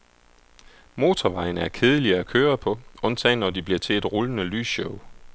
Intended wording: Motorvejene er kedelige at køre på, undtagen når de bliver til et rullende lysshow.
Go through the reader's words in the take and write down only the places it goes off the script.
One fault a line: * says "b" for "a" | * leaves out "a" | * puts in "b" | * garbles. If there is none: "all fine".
all fine